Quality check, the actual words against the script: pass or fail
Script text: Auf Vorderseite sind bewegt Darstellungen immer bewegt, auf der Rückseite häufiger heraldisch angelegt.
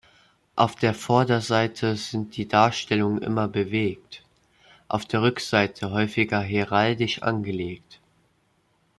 fail